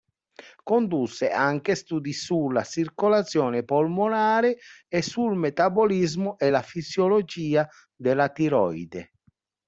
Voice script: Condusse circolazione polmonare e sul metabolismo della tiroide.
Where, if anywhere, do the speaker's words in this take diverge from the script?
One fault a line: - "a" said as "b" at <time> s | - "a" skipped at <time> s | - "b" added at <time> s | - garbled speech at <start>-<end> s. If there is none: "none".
- "anche studi sulla" added at 1.3 s
- "e la fisiologia" added at 6.4 s